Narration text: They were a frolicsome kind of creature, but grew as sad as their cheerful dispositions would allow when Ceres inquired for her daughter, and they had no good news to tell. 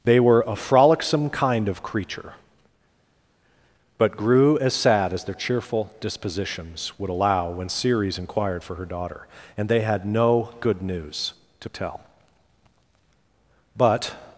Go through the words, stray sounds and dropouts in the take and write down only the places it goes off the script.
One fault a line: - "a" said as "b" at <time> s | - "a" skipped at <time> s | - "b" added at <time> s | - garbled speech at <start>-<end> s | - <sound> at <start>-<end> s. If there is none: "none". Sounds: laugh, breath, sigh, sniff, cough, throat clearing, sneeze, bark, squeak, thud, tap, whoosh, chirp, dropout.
- "But" added at 13.8 s